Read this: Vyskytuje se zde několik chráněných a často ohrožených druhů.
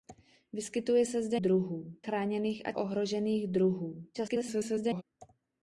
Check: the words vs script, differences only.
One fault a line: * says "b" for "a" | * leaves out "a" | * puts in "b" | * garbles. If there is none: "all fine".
* says "druhů" for "několik"
* leaves out "často"
* garbles